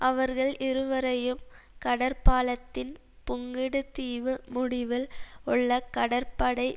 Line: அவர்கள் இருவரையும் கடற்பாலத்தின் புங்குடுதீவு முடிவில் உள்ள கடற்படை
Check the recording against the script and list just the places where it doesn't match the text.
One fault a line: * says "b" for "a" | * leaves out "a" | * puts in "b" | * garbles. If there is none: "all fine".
all fine